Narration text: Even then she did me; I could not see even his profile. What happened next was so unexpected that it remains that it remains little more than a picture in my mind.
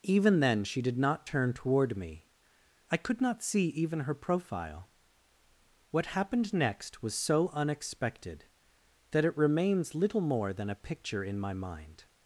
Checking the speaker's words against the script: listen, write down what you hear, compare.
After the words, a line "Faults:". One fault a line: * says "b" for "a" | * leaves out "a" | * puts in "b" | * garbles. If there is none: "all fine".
Even then she did not turn toward me; I could not see even her profile. What happened next was so unexpected that it remains little more than a picture in my mind.
Faults:
* puts in "not turn toward"
* says "her" for "his"
* leaves out "that it remains"